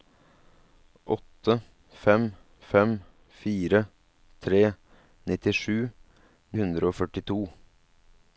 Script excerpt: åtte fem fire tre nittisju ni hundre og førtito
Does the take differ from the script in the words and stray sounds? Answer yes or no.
yes